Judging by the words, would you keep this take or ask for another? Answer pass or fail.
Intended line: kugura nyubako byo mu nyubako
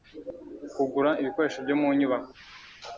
fail